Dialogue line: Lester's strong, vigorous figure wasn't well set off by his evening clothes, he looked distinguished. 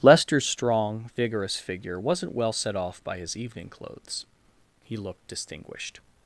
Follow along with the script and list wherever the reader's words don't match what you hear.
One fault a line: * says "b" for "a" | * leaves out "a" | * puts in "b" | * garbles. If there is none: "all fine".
all fine